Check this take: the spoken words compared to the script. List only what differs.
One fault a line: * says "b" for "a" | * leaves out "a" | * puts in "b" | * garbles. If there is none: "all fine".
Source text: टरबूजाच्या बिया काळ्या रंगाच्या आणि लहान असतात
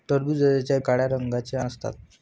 * leaves out "बिया"
* leaves out "आणि लहान"